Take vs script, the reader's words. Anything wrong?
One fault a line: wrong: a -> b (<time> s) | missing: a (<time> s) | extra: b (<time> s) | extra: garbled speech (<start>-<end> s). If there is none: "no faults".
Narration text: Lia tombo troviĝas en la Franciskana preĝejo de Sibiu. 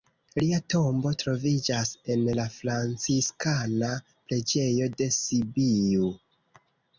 no faults